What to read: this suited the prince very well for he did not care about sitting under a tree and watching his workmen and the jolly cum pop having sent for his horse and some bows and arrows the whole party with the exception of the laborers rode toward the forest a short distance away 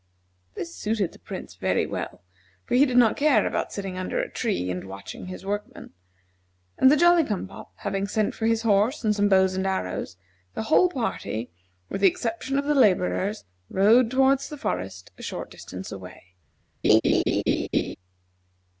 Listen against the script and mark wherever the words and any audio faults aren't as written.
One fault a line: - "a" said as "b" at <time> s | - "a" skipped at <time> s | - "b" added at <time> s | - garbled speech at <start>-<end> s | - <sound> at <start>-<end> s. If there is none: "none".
- laugh at 16.8-18.0 s